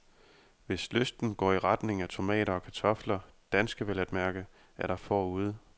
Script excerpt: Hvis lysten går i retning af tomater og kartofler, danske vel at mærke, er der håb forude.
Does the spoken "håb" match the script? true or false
false